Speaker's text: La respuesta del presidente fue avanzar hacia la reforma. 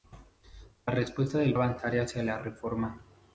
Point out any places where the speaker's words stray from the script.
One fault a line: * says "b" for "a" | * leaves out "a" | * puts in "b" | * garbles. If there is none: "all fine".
* leaves out "presidente fue"